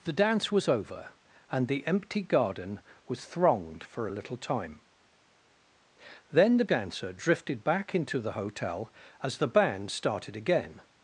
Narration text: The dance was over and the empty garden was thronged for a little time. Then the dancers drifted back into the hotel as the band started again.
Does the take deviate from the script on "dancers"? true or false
true